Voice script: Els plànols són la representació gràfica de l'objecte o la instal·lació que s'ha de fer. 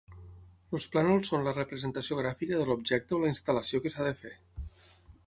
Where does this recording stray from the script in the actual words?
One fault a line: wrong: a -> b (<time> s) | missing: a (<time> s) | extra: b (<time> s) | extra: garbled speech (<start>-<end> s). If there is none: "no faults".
no faults